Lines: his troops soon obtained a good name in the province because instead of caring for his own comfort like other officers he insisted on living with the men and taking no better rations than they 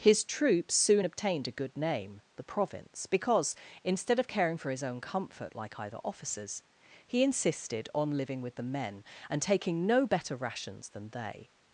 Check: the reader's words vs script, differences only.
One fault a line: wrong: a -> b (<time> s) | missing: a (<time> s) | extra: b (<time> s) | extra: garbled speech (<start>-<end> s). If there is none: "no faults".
missing: in (2.2 s)
wrong: other -> either (5.8 s)